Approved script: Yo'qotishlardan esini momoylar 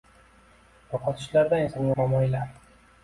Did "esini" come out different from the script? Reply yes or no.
no